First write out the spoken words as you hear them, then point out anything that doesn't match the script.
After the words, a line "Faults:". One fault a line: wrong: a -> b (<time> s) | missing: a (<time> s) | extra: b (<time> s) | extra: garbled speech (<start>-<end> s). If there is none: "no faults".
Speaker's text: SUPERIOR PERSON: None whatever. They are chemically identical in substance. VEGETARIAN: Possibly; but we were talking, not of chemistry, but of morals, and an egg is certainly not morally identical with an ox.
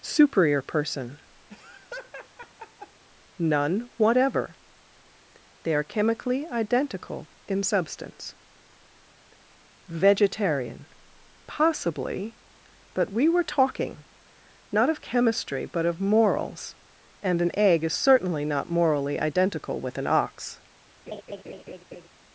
SUPERIOR PERSON: None whatever. They are chemically identical in substance. VEGETARIAN: Possibly; but we were talking, not of chemistry, but of morals, and an egg is certainly not morally identical with an ox.
Faults:
no faults